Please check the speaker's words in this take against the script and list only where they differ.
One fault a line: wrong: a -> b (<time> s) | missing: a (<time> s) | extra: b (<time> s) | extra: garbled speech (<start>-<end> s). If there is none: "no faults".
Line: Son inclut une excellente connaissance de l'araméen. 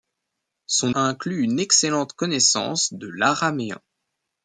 no faults